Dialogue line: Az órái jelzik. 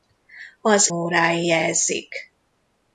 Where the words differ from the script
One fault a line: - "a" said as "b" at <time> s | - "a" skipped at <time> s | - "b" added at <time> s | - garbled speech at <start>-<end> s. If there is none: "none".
none